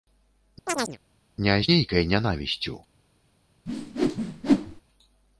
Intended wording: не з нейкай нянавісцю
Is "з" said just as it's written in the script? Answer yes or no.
yes